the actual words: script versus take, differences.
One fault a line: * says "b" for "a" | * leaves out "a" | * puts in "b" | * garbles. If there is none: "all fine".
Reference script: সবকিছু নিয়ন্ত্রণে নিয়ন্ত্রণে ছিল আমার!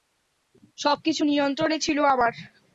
* leaves out "নিয়ন্ত্রণে"